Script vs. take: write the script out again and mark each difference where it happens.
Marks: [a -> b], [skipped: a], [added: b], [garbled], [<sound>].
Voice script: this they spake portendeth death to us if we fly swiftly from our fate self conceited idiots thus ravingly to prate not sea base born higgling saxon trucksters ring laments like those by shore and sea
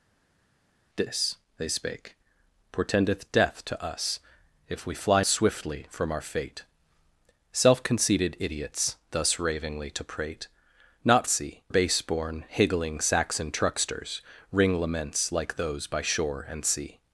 this they spake portendeth death to us if we fly swiftly from our fate self conceited idiots thus ravingly to prate not sea base born higgling saxon trucksters ring laments like those by shore and sea